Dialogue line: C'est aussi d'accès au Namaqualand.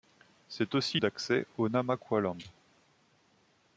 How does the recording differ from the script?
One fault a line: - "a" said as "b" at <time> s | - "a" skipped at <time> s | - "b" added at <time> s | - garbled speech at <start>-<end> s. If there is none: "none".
none